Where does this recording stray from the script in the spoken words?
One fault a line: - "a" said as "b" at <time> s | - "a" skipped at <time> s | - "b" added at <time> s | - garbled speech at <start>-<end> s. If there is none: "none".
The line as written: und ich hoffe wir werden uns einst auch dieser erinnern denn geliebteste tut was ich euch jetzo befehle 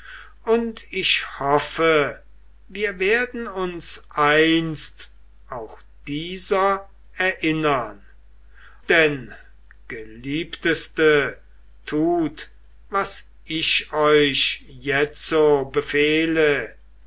none